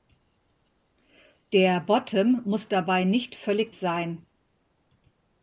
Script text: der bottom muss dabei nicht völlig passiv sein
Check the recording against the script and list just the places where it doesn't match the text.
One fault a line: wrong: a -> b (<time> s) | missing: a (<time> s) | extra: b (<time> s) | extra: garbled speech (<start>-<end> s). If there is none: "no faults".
missing: passiv (3.8 s)